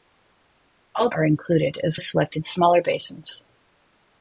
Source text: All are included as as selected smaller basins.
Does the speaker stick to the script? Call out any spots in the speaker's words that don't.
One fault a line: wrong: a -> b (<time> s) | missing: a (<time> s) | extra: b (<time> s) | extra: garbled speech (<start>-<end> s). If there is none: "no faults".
no faults